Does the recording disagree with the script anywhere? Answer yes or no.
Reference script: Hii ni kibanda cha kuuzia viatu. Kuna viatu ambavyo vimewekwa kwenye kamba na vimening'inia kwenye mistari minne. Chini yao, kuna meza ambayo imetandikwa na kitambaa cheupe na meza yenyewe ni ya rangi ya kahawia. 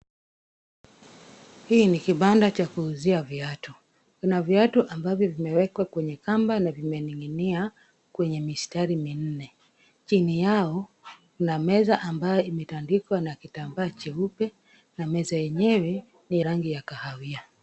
yes